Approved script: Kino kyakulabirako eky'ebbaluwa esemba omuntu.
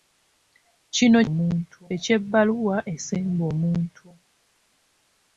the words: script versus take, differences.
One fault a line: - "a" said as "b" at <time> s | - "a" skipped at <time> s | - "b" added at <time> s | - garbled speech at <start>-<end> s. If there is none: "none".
- "kyakulabirako" said as "omuntu" at 1.3 s